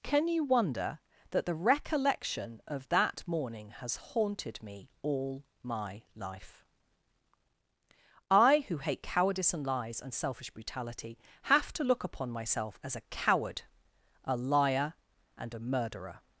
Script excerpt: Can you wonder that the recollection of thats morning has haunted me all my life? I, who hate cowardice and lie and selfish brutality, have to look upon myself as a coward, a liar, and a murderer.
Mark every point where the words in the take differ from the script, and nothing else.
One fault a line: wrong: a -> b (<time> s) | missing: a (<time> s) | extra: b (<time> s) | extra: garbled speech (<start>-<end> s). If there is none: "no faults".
wrong: thats -> that (2.9 s)
wrong: lie -> lies (9.7 s)